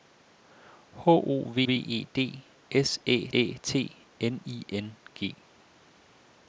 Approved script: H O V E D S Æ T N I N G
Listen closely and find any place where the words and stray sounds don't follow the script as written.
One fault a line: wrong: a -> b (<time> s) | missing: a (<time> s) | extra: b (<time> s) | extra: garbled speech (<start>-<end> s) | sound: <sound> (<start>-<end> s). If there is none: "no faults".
extra: V (1.6 s)
extra: Æ (3.3 s)